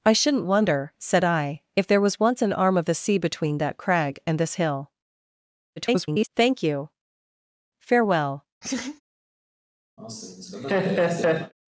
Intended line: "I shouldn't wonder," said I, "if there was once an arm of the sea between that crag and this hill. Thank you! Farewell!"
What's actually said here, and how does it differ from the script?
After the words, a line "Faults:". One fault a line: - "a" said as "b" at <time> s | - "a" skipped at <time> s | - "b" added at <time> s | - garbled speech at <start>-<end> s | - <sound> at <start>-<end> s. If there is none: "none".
"I shouldn't wonder," said I, "if there was once an arm of the sea between that crag and this hill. [garbled] Thank you! Farewell!"
Faults:
- garbled speech at 5.8-6.3 s
- laugh at 8.6-9.0 s
- laugh at 10.0-11.5 s